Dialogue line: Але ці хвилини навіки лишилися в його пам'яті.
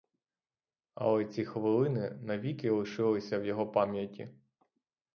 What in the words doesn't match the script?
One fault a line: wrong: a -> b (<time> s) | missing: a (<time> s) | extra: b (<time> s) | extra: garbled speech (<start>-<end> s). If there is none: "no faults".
no faults